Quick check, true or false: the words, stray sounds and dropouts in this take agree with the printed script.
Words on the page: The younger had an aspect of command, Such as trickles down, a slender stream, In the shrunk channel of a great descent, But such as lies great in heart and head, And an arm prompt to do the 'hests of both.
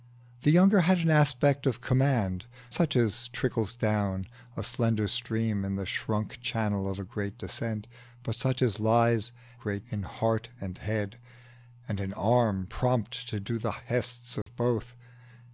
false